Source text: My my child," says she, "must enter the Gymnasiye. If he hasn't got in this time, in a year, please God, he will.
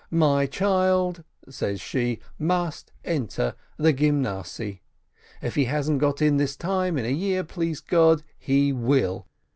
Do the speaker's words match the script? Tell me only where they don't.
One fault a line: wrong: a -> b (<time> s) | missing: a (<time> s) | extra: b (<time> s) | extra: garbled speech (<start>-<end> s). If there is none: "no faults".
missing: my (0.5 s)